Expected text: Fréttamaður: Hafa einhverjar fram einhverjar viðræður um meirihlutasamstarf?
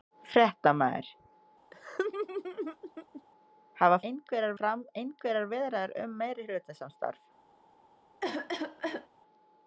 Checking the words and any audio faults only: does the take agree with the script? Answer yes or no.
no